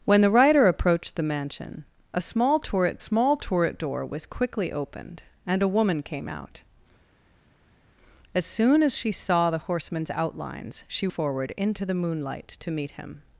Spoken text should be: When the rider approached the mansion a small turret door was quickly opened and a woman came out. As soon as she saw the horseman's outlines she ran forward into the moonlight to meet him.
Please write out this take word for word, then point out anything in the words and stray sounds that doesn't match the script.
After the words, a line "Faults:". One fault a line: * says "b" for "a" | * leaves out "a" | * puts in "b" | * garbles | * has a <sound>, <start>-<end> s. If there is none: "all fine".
When the rider approached the mansion a small turret small turret door was quickly opened and a woman came out. As soon as she saw the horseman's outlines she forward into the moonlight to meet him.
Faults:
* puts in "small turret"
* leaves out "ran"